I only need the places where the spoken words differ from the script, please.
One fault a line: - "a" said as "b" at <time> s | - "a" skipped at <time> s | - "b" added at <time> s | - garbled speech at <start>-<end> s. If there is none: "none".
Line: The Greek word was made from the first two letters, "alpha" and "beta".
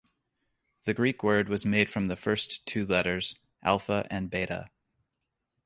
none